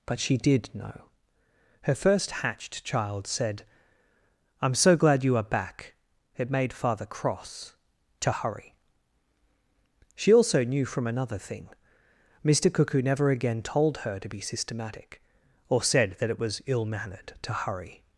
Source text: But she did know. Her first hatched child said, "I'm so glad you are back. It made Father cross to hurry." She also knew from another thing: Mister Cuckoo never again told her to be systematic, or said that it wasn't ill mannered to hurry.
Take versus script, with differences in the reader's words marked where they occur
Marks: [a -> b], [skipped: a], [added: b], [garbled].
But she did know. Her first hatched child said, "I'm so glad you are back. It made Father cross to hurry." She also knew from another thing: Mister Cuckoo never again told her to be systematic, or said that it [wasn't -> was] ill mannered to hurry.